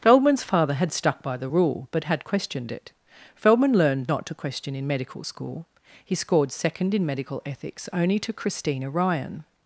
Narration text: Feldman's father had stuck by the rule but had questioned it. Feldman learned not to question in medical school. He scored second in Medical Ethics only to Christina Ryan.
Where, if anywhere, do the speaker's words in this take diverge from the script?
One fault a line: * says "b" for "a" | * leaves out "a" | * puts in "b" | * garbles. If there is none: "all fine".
all fine